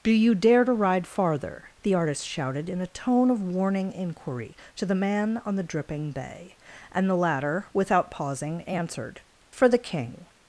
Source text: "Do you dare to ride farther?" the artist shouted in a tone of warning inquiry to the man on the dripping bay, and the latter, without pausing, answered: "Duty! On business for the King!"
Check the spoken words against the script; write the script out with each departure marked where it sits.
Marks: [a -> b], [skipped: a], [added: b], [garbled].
"Do you dare to ride farther?" the artist shouted in a tone of warning inquiry to the man on the dripping bay, and the latter, without pausing, answered: [skipped: "Duty! On business] for the King!"